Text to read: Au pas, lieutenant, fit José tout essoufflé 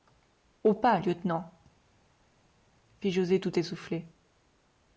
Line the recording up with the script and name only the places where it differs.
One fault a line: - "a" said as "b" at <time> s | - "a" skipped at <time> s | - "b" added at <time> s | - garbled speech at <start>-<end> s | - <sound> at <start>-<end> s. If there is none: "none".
none